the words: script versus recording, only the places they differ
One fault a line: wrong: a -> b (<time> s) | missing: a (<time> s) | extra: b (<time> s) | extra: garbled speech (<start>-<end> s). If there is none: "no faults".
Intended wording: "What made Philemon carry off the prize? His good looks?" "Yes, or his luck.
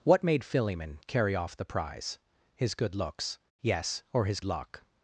no faults